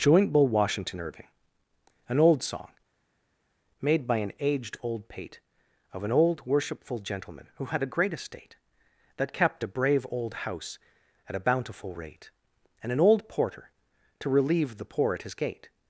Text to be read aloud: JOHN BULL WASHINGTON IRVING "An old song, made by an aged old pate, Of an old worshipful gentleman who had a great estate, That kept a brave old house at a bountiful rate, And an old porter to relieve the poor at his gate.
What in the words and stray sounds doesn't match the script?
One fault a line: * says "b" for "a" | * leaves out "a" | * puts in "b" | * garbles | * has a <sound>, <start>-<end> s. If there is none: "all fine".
* says "Joint" for "JOHN"